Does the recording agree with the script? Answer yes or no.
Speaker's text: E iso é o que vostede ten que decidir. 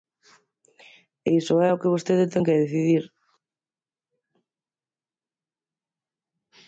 yes